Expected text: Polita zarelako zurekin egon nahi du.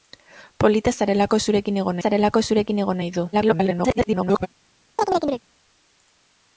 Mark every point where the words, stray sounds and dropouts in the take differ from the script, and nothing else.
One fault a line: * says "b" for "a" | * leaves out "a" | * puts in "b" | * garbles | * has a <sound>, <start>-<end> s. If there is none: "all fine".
* puts in "zarelako zurekin egon"
* garbles
* has a chirp, 5.0-5.4 s